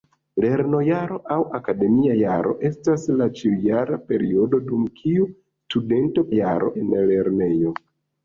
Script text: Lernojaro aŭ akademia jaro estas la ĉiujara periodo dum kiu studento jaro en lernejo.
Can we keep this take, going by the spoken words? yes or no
yes